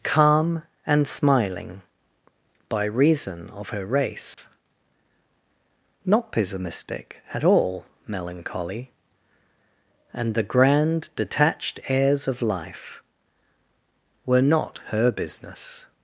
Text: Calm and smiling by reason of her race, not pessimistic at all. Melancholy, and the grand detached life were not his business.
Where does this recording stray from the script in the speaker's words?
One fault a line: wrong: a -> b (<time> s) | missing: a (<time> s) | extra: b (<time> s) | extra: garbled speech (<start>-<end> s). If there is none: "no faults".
extra: airs of (11.9 s)
wrong: his -> her (14.9 s)